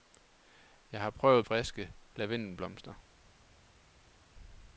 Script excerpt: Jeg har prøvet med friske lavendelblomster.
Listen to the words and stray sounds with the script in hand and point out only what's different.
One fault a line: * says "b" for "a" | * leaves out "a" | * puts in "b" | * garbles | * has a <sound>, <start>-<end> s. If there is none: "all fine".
* leaves out "med"